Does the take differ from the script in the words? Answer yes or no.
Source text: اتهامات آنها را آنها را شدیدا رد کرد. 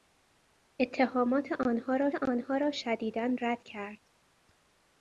no